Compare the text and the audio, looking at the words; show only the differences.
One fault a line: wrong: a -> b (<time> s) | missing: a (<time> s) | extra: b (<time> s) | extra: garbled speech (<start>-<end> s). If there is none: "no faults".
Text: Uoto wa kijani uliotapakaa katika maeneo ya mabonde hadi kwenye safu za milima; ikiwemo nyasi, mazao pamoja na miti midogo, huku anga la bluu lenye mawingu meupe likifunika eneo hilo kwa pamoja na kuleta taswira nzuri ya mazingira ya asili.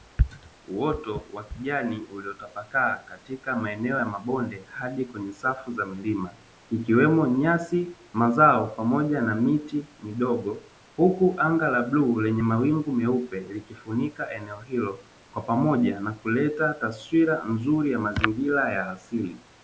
no faults